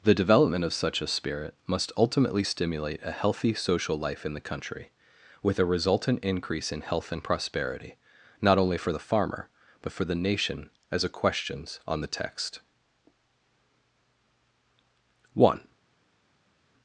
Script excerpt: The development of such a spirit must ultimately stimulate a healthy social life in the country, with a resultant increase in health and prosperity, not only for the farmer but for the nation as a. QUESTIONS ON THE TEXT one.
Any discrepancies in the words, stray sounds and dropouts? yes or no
no